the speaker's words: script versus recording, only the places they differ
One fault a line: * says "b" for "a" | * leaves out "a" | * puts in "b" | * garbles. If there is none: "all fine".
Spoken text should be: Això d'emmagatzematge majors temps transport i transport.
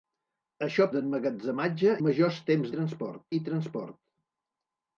all fine